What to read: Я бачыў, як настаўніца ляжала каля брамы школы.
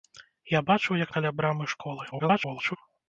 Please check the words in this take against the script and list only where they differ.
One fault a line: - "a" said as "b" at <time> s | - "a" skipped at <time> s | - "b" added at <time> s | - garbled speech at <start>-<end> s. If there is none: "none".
- "настаўніца ляжала" skipped at 1.1 s
- garbled speech at 2.1-2.8 s